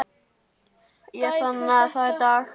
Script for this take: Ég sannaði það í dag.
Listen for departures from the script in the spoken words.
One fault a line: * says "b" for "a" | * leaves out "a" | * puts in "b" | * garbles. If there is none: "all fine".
all fine